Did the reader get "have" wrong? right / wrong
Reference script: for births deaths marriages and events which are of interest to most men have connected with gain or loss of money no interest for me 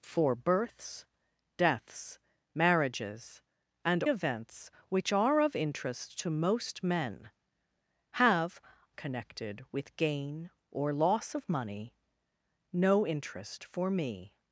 right